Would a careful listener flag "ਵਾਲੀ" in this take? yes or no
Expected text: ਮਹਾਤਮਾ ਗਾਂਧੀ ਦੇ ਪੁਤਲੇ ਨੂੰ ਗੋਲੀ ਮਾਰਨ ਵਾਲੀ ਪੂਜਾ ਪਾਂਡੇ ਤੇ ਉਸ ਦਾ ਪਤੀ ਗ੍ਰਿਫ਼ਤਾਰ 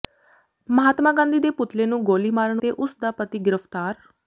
yes